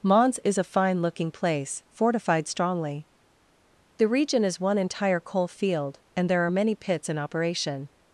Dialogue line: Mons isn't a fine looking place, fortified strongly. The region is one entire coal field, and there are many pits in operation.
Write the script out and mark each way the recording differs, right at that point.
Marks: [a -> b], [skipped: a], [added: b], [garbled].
Mons [isn't -> is] a fine looking place, fortified strongly. The region is one entire coal field, and there are many pits in operation.